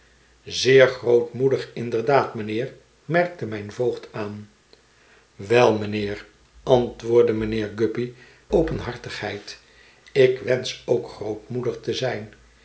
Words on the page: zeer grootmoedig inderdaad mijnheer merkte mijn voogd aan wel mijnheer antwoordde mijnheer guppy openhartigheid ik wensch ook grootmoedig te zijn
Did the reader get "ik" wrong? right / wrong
right